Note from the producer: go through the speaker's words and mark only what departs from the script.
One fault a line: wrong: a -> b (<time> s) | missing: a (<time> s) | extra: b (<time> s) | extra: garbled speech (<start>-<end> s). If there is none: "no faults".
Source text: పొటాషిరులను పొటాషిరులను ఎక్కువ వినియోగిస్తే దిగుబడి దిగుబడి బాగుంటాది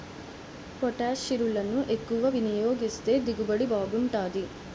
missing: పొటాషిరులను (1.8 s)
missing: దిగుబడి (3.7 s)